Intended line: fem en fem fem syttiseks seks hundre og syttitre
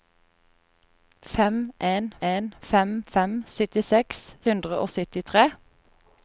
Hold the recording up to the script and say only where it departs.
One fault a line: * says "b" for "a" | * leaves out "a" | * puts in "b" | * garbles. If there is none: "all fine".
* puts in "en"
* leaves out "seks"